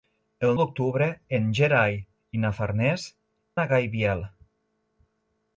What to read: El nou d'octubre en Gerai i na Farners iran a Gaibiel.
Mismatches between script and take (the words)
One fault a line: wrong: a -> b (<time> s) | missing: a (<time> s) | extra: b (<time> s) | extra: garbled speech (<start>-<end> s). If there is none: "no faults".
missing: nou (0.5 s)
missing: iran (3.0 s)